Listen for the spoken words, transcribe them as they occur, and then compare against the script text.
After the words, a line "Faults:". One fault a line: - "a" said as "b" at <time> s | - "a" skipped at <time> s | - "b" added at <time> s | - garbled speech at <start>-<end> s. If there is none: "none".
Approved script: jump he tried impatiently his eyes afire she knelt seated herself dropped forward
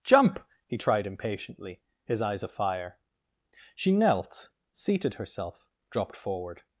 jump he tried impatiently his eyes afire she knelt seated herself dropped forward
Faults:
none